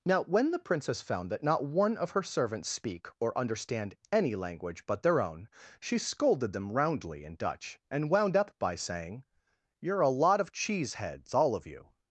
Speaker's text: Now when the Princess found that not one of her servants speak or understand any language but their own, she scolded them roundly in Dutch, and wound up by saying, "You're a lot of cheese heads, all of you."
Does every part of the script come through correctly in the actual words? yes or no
yes